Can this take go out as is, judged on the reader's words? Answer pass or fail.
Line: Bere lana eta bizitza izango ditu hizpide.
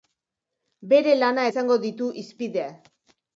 fail